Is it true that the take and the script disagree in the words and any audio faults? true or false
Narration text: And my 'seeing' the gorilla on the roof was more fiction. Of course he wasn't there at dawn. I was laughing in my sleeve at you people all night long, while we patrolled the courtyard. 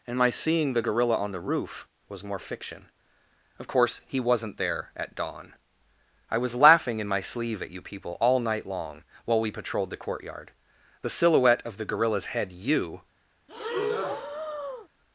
true